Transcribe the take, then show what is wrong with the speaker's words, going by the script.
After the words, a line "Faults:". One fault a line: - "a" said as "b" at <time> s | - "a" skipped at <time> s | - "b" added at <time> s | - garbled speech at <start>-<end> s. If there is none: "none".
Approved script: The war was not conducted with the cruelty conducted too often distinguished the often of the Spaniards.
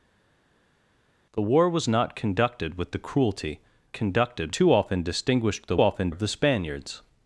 The war was not conducted with the cruelty conducted too often distinguished the often of the Spaniards.
Faults:
none